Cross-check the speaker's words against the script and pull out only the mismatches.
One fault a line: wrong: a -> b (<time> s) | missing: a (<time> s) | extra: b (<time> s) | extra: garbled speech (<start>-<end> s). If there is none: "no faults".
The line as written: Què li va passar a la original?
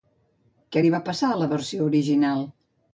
extra: versió (1.6 s)